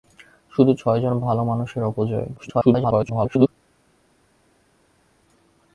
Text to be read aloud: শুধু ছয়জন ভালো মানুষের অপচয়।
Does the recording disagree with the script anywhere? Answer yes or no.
yes